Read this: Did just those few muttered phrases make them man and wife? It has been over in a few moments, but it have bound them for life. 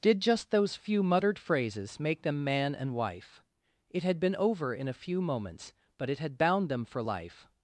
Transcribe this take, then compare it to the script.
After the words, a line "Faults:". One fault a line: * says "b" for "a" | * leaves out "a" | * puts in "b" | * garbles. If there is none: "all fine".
Did just those few muttered phrases make them man and wife? It had been over in a few moments, but it had bound them for life.
Faults:
* says "had" for "has"
* says "had" for "have"